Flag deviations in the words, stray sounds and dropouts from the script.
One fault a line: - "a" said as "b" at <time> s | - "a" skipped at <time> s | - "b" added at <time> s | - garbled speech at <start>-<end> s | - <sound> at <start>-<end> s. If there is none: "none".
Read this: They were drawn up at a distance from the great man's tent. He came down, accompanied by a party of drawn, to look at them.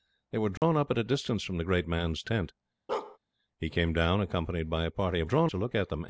- dropout at 0.6-0.6 s
- bark at 2.9-3.2 s